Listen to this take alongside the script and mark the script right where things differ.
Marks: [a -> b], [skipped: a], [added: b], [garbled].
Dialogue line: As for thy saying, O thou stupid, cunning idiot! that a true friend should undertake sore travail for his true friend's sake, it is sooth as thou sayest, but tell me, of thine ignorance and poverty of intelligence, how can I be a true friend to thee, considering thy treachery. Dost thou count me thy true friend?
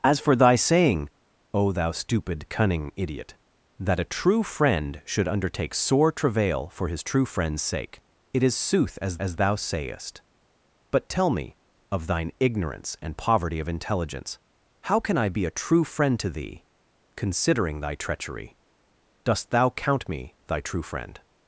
As for thy saying, O thou stupid, cunning idiot! that a true friend should undertake sore travail for his true friend's sake, it is sooth as [added: as] thou sayest, but tell me, of thine ignorance and poverty of intelligence, how can I be a true friend to thee, considering thy treachery. Dost thou count me thy true friend?